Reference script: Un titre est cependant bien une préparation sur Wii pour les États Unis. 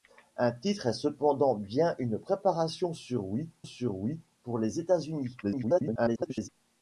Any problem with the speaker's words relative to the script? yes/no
yes